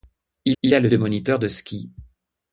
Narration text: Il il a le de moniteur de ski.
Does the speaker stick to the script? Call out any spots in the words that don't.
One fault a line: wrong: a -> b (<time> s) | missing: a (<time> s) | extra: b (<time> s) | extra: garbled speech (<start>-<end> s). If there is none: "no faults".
no faults